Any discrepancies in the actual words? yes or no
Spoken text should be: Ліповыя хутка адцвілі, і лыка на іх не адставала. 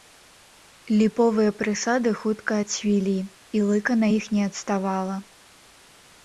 yes